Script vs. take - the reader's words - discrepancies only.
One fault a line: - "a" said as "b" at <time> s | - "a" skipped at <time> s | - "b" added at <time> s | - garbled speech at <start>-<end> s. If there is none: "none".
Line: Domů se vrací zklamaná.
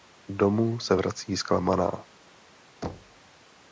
none